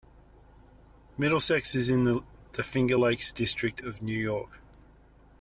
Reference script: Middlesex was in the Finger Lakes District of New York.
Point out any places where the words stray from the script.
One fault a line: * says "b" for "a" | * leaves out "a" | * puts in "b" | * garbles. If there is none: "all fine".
* says "is" for "was"